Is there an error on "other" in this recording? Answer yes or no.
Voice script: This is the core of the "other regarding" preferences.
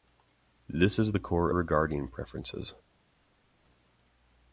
yes